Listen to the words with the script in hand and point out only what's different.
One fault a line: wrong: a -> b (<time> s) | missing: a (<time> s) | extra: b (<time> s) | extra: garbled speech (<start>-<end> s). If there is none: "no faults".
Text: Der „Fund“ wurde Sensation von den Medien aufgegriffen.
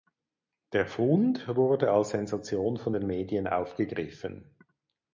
extra: als (1.9 s)